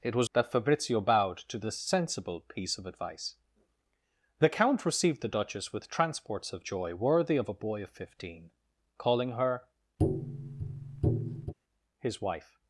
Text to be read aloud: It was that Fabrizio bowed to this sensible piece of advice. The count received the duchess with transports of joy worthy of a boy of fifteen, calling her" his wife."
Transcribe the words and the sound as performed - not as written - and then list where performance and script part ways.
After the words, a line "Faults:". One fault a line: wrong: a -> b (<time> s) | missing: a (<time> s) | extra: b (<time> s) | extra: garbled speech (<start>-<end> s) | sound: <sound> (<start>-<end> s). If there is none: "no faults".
It was that Fabrizio bowed to this sensible piece of advice. The count received the duchess with transports of joy worthy of a boy of fifteen, calling her" his wife."
Faults:
sound: tap (10.0-11.5 s)